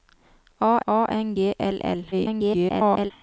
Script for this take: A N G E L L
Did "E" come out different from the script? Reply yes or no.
yes